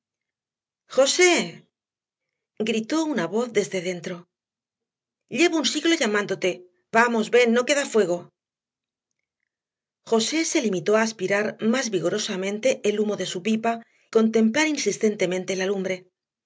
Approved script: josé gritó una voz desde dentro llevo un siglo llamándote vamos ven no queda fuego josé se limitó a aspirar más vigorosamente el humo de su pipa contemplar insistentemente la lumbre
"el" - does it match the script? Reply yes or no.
yes